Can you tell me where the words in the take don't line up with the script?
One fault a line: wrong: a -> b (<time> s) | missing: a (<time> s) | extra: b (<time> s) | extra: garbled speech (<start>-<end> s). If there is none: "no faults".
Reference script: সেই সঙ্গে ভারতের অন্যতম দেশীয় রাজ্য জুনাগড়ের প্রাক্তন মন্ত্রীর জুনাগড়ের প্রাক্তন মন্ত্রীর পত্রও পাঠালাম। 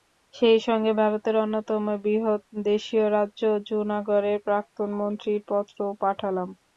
extra: বৃহৎ (2.0 s)
missing: জুনাগড়ের প্রাক্তন মন্ত্রীর (5.4 s)